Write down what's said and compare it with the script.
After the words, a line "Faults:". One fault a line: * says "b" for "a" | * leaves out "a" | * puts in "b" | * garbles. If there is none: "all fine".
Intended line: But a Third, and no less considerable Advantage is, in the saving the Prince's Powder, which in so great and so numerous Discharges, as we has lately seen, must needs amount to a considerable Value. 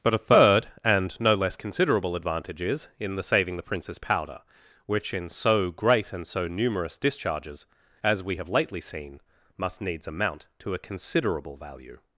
But a Third, and no less considerable Advantage is, in the saving the Prince's Powder, which in so great and so numerous Discharges, as we have lately seen, must needs amount to a considerable Value.
Faults:
* says "have" for "has"